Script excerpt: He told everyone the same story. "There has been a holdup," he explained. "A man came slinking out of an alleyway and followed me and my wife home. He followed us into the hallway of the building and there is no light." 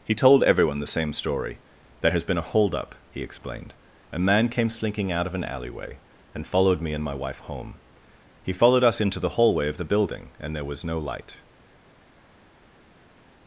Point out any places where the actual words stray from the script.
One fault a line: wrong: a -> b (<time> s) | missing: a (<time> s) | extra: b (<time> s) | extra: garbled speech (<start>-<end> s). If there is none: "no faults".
wrong: is -> was (10.7 s)